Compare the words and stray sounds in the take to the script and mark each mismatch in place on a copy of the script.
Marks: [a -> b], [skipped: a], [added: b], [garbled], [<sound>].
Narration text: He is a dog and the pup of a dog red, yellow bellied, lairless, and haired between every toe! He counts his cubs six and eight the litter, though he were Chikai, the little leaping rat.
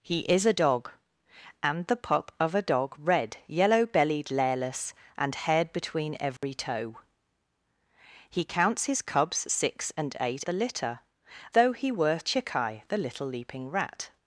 He is a dog and the pup of a dog red, yellow bellied, lairless, and haired between every [dropout] toe! He counts his cubs six and eight the litter, though he were Chikai, the little leaping rat.